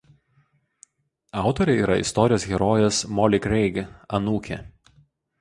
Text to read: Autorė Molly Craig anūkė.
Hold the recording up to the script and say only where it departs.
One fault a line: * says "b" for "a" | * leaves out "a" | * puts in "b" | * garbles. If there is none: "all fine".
* puts in "yra istorijos herojės"